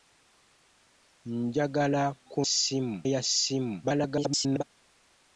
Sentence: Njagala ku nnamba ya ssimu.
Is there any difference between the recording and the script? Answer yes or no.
yes